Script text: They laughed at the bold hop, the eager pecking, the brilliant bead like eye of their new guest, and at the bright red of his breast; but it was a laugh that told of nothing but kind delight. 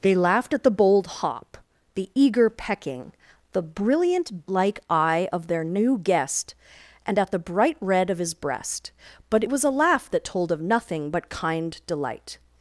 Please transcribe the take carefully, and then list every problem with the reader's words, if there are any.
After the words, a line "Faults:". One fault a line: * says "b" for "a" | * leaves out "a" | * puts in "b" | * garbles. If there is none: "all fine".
They laughed at the bold hop, the eager pecking, the brilliant like eye of their new guest, and at the bright red of his breast; but it was a laugh that told of nothing but kind delight.
Faults:
* leaves out "bead"